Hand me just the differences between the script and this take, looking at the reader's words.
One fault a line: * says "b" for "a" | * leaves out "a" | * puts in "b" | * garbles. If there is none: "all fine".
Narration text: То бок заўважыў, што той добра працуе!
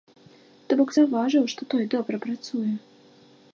all fine